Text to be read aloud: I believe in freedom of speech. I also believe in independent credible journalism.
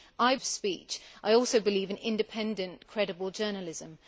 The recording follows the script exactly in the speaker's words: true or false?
false